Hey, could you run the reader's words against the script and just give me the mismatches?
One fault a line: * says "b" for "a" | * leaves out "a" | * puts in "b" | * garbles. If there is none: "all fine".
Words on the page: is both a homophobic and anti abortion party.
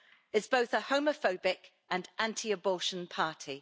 all fine